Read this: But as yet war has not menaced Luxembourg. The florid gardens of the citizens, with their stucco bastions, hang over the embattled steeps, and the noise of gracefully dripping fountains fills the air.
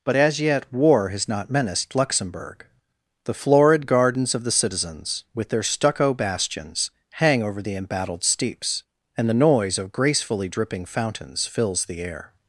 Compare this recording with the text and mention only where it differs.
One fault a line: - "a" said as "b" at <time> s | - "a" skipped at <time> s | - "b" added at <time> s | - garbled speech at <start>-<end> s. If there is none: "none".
none